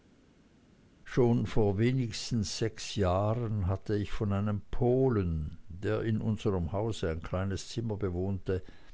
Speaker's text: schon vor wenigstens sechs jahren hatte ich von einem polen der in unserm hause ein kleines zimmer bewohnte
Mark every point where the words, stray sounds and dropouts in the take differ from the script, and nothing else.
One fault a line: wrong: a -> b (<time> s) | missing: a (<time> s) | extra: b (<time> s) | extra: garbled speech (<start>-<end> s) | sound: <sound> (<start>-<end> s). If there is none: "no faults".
no faults